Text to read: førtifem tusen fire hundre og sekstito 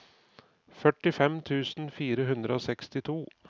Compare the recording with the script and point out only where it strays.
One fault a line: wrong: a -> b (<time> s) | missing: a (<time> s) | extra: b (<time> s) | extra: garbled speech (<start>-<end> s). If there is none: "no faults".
no faults